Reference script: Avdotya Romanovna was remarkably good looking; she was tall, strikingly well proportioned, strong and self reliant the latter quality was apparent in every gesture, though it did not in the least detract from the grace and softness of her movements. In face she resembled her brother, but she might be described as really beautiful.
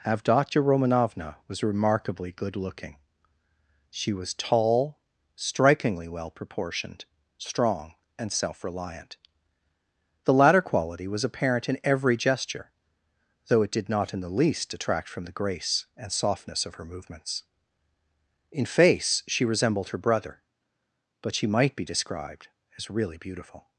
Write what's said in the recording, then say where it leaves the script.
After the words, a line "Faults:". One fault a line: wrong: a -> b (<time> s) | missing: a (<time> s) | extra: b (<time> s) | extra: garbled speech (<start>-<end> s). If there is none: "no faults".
Avdotya Romanovna was remarkably good looking; she was tall, strikingly well proportioned, strong and self reliant the latter quality was apparent in every gesture, though it did not in the least detract from the grace and softness of her movements. In face she resembled her brother, but she might be described as really beautiful.
Faults:
no faults